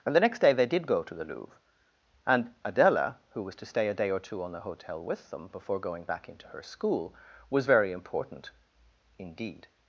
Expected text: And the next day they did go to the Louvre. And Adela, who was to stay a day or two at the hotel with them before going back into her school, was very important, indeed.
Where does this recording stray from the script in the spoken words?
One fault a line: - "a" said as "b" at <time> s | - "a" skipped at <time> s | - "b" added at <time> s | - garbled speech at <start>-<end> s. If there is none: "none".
- "at" said as "on" at 4.4 s